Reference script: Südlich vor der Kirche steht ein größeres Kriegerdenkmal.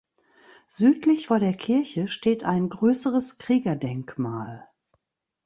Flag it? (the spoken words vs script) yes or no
no